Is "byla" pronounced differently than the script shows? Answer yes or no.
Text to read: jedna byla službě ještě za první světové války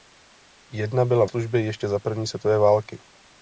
no